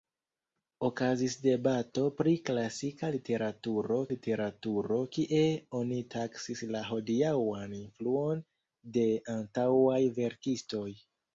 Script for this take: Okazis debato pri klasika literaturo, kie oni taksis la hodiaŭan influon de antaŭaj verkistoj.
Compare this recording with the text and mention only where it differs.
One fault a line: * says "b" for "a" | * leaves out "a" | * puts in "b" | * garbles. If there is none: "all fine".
* puts in "literaturo"